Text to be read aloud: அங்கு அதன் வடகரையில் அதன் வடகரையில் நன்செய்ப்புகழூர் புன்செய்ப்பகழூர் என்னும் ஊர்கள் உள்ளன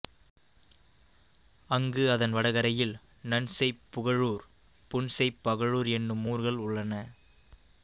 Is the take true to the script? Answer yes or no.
no